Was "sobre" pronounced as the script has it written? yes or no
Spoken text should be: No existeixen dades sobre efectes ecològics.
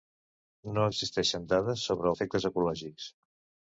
yes